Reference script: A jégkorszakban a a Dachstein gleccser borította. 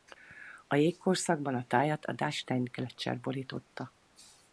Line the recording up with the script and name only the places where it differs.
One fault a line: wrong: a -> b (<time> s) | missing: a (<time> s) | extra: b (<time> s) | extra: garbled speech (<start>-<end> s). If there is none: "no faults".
extra: tájat (1.7 s)